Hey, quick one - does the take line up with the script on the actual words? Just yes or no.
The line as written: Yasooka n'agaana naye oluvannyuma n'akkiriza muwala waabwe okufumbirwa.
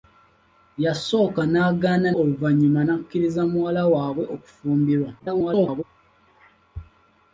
no